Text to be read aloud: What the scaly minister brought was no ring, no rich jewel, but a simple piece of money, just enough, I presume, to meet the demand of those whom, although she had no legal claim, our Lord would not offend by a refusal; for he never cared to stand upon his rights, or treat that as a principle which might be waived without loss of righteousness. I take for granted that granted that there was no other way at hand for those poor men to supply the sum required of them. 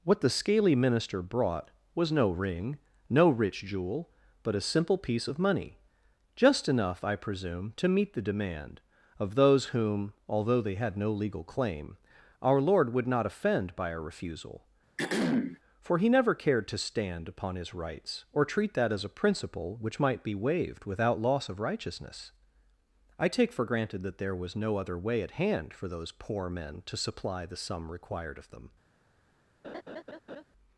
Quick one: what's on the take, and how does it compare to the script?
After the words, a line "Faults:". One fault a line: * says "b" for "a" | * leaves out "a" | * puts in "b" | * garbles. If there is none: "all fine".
What the scaly minister brought was no ring, no rich jewel, but a simple piece of money, just enough, I presume, to meet the demand of those whom, although they had no legal claim, our Lord would not offend by a refusal; for he never cared to stand upon his rights, or treat that as a principle which might be waived without loss of righteousness. I take for granted that there was no other way at hand for those poor men to supply the sum required of them.
Faults:
* says "they" for "she"
* leaves out "granted that"